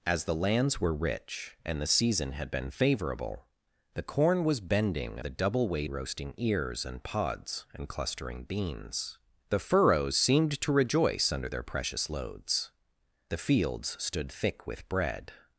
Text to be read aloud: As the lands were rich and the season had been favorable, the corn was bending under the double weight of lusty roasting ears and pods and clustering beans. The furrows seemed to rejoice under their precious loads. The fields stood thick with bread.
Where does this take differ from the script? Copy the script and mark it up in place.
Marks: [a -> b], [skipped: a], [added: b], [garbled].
As the lands were rich and the season had been favorable, the corn was bending [skipped: under] the double weight [skipped: of lusty] roasting ears and pods and clustering beans. The furrows seemed to rejoice under their precious loads. The fields stood thick with bread.